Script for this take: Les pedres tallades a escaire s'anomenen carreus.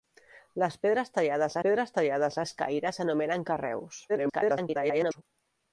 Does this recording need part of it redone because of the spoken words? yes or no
yes